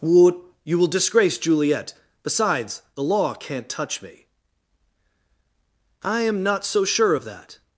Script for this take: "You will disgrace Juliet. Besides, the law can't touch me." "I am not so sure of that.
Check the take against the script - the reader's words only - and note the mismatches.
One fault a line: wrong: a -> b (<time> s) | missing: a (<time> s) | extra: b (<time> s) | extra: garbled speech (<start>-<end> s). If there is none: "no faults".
extra: what (0.0 s)